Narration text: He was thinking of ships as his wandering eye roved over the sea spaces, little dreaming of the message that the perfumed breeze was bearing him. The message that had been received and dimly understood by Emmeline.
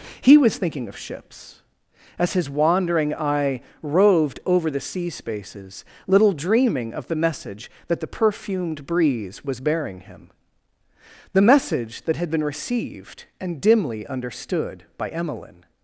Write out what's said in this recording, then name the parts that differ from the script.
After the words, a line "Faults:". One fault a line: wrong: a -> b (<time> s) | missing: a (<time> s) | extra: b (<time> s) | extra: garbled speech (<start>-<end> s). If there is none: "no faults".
He was thinking of ships as his wandering eye roved over the sea spaces, little dreaming of the message that the perfumed breeze was bearing him. The message that had been received and dimly understood by Emmeline.
Faults:
no faults